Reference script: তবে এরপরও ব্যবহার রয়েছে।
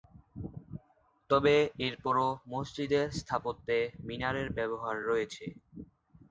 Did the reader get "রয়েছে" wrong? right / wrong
right